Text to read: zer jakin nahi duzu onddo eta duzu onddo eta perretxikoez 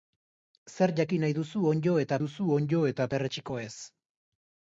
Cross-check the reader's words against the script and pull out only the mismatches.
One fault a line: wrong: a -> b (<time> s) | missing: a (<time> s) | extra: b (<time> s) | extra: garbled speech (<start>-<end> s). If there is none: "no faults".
no faults